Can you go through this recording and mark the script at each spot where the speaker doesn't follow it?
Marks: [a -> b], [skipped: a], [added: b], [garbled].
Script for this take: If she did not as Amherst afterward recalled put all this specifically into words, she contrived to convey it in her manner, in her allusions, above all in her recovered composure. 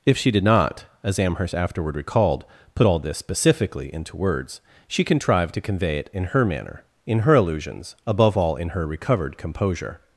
If she did not as Amherst afterward recalled put all this specifically into words, she contrived to convey it in her manner, in her allusions, above all in her recovered composure.